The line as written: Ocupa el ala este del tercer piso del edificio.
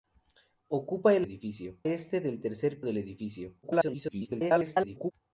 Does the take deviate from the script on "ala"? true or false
true